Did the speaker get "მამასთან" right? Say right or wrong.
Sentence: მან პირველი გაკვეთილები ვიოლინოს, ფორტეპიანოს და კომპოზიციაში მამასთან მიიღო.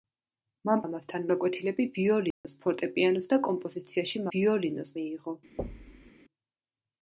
wrong